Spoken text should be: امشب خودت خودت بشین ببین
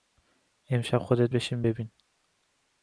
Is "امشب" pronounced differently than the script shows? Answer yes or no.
no